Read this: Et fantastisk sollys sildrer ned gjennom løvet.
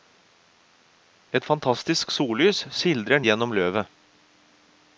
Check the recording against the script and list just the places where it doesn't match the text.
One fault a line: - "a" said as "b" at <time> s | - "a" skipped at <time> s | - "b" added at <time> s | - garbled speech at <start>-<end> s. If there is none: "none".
- "ned" skipped at 3.2 s